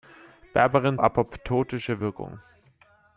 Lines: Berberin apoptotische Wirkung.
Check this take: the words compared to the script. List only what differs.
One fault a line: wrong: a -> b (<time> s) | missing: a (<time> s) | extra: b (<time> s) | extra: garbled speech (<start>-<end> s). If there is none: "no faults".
no faults